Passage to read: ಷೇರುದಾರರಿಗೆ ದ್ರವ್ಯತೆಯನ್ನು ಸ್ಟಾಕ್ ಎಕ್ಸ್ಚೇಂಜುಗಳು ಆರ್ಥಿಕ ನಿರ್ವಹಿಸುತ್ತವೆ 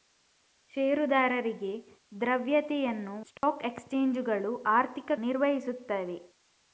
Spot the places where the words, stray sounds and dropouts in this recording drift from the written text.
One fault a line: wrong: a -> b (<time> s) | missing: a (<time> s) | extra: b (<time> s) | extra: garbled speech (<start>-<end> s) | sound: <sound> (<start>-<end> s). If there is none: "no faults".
sound: dropout (3.4-3.4 s)